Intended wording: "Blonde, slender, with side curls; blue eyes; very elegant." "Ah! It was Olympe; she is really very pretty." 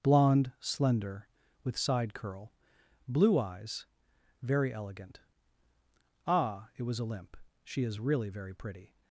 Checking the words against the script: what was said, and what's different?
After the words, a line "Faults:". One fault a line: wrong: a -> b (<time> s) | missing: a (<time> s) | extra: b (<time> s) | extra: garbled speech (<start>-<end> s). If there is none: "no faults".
"Blonde, slender, with side curl; blue eyes; very elegant." "Ah! It was Olympe; she is really very pretty."
Faults:
wrong: curls -> curl (2.1 s)